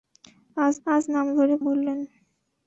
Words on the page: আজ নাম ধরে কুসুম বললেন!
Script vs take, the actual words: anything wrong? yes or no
yes